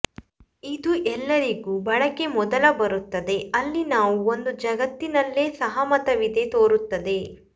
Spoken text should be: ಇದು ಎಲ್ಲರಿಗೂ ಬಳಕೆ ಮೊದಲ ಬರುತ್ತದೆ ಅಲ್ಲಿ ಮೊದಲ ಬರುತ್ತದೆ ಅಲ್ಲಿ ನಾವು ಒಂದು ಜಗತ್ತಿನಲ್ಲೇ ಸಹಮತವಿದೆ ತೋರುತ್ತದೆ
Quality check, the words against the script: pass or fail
fail